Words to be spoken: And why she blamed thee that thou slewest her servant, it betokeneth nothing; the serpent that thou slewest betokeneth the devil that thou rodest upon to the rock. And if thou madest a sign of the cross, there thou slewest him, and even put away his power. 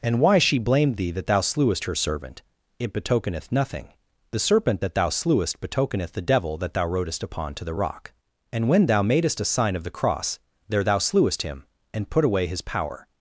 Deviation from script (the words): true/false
true